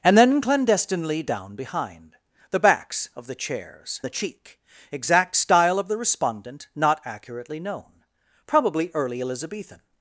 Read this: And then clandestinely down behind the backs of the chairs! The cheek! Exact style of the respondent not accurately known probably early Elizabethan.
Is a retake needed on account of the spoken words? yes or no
no